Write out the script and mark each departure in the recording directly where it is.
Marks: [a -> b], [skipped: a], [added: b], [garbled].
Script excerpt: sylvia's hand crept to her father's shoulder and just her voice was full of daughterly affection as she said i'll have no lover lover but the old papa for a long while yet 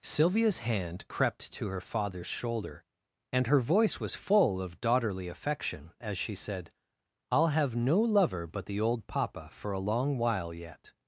sylvia's hand crept to her father's shoulder and [skipped: just] her voice was full of daughterly affection as she said i'll have no lover [skipped: lover] but the old papa for a long while yet